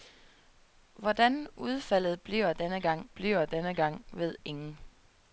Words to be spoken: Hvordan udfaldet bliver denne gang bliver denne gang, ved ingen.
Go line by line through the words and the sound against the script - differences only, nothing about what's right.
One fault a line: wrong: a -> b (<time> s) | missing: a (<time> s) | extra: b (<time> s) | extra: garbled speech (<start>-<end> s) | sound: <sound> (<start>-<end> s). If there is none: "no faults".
no faults